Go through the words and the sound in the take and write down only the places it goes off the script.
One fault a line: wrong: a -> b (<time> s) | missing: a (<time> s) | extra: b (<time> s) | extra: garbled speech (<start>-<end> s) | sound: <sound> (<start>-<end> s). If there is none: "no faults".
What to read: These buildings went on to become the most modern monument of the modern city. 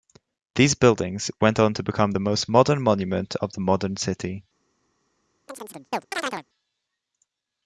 sound: chirp (5.5-6.5 s)